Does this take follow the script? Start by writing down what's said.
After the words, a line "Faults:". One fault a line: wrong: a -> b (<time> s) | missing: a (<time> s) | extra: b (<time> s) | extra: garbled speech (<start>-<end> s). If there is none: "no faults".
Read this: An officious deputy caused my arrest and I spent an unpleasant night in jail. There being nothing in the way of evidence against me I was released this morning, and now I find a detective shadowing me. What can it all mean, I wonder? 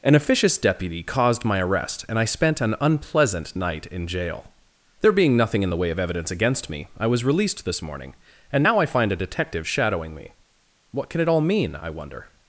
An officious deputy caused my arrest and I spent an unpleasant night in jail. There being nothing in the way of evidence against me I was released this morning, and now I find a detective shadowing me. What can it all mean, I wonder?
Faults:
no faults